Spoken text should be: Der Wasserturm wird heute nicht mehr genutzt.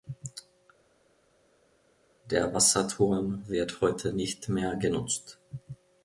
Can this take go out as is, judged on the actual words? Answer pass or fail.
pass